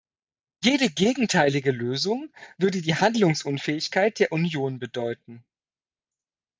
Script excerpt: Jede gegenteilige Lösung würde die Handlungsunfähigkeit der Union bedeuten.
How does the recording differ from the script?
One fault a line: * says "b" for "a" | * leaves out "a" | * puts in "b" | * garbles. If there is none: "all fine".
all fine